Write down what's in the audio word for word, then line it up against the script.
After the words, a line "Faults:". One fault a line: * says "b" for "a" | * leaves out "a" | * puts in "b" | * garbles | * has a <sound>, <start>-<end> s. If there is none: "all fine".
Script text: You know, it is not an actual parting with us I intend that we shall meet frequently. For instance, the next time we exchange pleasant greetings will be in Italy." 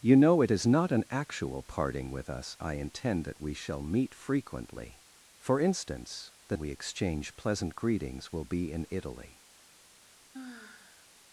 You know, it is not an actual parting with us I intend that we shall meet frequently. For instance, the we exchange pleasant greetings will be in Italy."
Faults:
* leaves out "next time"
* has a sigh, 10.3-11.1 s